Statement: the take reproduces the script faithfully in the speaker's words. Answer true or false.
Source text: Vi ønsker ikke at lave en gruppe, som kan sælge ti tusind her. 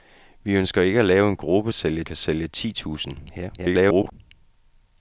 false